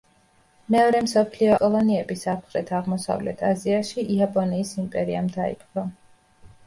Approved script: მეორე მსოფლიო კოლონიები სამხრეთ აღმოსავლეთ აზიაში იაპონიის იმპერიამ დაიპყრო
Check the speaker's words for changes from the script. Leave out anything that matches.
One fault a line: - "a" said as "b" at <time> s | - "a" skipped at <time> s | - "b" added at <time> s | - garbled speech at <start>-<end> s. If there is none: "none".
none